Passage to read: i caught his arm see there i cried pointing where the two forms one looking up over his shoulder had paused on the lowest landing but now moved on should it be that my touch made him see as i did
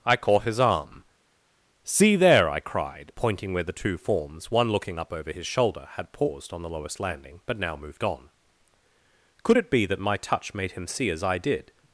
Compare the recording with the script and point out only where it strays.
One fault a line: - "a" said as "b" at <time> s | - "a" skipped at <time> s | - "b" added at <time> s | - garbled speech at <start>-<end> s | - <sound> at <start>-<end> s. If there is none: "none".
- "should" said as "could" at 9.4 s